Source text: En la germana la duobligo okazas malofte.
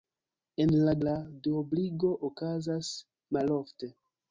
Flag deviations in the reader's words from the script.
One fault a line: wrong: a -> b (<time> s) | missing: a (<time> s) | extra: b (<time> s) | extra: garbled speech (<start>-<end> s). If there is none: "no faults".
missing: germana (0.9 s)